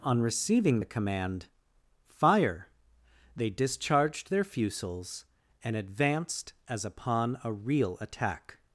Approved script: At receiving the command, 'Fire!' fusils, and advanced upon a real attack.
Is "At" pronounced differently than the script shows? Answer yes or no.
yes